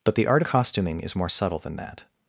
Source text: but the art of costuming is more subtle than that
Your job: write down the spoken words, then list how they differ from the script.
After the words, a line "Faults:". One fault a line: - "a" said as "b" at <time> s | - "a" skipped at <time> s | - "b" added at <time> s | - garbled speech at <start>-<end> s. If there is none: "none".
but the art costuming is more subtle than that
Faults:
- "of" skipped at 0.4 s